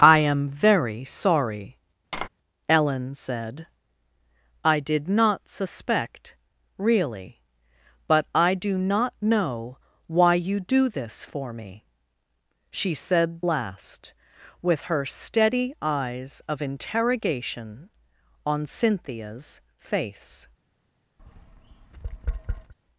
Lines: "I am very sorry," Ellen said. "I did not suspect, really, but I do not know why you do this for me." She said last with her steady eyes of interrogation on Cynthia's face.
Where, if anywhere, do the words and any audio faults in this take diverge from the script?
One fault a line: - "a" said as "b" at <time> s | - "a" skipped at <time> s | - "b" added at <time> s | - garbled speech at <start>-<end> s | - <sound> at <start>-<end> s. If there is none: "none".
- tap at 2.1-2.3 s
- tap at 21.2-22.7 s